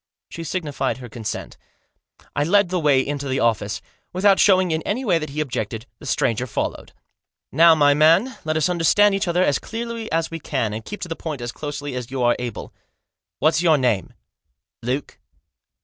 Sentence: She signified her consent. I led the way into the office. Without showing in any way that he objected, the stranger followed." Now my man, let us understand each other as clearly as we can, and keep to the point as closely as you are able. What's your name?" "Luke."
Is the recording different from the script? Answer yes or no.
no